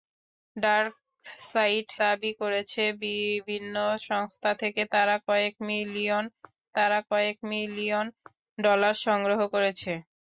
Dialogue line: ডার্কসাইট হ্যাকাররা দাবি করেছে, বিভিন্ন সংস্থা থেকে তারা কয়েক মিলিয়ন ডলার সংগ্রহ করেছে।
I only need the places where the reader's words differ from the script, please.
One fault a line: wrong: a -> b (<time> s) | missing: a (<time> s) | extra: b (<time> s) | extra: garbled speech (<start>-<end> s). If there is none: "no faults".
missing: হ্যাকাররা (1.9 s)
extra: তারা কয়েক মিলিয়ন (6.8 s)